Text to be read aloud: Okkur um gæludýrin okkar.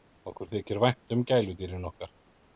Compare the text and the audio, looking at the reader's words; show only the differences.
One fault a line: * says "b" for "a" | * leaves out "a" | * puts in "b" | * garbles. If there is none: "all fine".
* puts in "þykir vænt"